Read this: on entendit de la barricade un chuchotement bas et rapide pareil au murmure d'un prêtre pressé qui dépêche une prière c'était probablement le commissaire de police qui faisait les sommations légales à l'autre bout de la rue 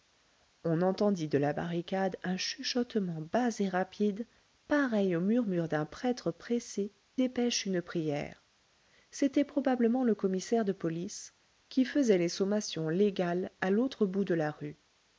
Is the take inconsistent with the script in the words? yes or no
yes